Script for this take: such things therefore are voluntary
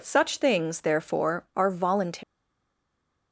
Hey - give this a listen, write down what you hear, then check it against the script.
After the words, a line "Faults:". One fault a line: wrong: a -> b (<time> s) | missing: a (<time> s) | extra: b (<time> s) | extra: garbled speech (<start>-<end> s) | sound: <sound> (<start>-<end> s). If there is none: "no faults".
such things therefore are voluntary
Faults:
no faults